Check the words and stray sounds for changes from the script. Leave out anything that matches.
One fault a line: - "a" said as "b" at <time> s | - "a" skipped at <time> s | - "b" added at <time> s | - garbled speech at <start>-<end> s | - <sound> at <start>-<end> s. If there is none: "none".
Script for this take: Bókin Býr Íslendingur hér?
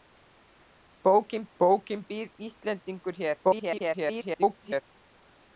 - "bókin" added at 1.6 s
- garbled speech at 3.4-4.8 s